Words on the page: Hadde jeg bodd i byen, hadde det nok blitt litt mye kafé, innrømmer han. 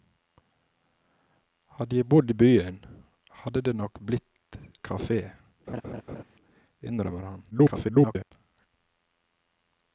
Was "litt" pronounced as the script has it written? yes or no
no